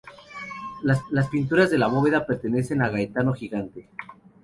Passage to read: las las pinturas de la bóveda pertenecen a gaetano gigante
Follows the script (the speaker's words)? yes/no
yes